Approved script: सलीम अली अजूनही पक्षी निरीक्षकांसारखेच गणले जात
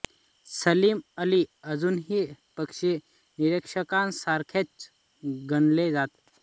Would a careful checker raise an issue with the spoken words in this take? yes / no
no